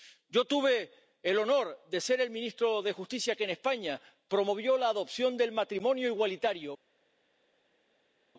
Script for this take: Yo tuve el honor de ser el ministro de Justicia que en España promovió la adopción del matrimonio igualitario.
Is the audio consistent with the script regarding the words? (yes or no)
yes